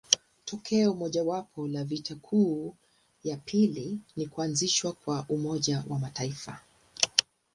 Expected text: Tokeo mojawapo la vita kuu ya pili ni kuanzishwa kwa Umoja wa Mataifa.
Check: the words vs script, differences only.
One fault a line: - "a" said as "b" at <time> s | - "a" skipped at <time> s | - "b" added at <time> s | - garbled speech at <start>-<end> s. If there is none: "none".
none